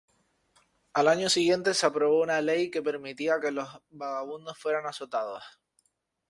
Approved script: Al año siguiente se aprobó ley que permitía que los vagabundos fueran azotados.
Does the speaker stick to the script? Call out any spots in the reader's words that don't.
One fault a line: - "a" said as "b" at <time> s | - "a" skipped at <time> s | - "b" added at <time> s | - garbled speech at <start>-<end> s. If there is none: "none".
- "una" added at 2.2 s